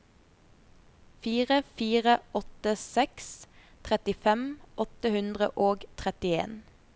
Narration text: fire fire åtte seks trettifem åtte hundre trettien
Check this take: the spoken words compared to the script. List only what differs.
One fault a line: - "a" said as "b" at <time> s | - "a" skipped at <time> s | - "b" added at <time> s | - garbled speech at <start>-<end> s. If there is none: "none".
- "og" added at 5.7 s